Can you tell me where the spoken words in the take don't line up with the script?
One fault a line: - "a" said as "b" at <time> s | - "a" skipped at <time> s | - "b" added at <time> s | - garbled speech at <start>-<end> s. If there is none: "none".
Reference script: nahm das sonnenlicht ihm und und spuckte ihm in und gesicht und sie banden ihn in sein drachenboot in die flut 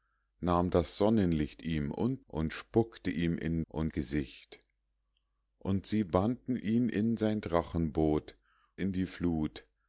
none